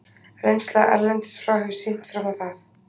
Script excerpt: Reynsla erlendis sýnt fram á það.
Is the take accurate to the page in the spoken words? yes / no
no